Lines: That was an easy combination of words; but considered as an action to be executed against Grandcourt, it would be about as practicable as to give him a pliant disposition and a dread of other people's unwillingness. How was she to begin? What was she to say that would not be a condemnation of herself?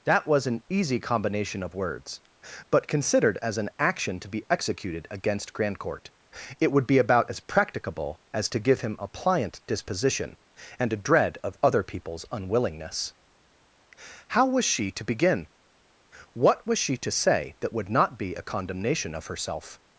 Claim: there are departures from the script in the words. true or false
false